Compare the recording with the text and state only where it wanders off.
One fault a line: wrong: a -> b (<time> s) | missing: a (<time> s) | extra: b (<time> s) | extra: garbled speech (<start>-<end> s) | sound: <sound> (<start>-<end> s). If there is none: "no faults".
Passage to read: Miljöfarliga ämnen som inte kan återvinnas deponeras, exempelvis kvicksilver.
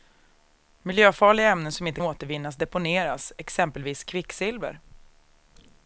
missing: kan (2.0 s)